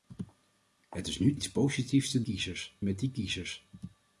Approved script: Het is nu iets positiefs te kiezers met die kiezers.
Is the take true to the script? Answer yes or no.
yes